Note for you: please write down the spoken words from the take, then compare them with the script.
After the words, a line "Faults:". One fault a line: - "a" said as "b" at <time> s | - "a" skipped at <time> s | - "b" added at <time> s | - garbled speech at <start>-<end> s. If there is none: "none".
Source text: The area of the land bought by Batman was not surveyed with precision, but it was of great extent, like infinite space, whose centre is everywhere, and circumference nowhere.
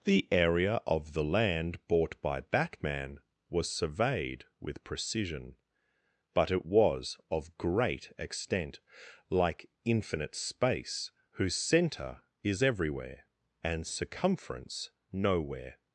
The area of the land bought by Batman was surveyed with precision, but it was of great extent, like infinite space, whose centre is everywhere, and circumference nowhere.
Faults:
- "not" skipped at 3.7 s